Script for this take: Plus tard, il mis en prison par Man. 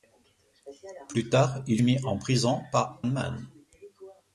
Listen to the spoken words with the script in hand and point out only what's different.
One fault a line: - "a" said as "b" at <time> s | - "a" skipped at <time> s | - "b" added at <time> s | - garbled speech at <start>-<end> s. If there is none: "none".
none